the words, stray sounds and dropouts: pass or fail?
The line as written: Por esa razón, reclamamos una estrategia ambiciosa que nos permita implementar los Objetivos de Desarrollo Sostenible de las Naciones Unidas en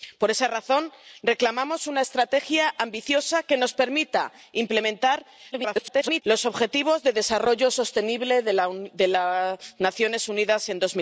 fail